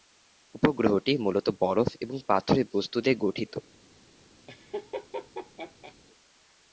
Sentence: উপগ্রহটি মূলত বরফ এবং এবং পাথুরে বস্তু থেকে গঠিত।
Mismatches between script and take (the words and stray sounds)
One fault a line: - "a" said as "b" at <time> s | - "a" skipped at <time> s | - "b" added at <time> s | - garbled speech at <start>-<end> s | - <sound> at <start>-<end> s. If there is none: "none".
- "এবং" skipped at 2.2 s
- "থেকে" said as "দিয়ে" at 3.0 s
- laugh at 4.5-5.9 s